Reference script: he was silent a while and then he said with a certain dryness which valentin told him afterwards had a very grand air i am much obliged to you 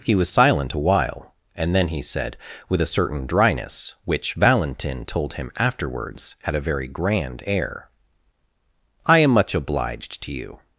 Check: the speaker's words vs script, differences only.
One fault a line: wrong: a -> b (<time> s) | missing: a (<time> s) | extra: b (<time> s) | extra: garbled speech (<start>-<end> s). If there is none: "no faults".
no faults